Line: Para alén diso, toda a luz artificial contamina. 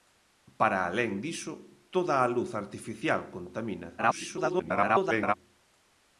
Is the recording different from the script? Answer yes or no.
yes